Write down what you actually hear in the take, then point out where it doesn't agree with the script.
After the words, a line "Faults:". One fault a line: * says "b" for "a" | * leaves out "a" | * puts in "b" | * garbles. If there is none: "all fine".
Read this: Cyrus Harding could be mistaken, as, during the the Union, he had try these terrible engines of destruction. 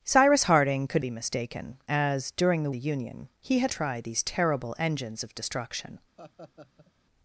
Cyrus Harding could be mistaken, as, during the the Union, he had try these terrible engines of destruction.
Faults:
all fine